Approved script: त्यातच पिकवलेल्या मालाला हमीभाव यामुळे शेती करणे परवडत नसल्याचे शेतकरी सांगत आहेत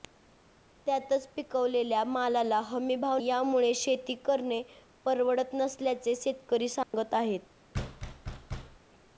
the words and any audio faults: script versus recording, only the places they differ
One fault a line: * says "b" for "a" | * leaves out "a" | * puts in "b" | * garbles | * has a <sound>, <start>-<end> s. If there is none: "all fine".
* has a dropout, 6.8-6.9 s
* has a thud, 7.7-8.8 s